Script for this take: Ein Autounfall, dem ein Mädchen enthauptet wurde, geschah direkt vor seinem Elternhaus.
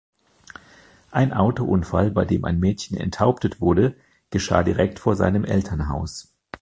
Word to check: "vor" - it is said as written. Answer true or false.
true